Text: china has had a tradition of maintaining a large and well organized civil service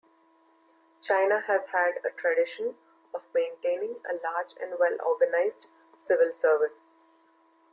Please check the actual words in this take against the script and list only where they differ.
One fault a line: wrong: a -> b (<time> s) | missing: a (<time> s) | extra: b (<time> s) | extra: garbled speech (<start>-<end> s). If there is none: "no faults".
no faults